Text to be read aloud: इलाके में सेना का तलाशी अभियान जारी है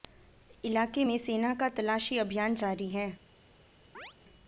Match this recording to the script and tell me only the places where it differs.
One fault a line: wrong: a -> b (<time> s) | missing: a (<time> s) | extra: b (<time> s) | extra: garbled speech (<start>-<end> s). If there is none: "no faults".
no faults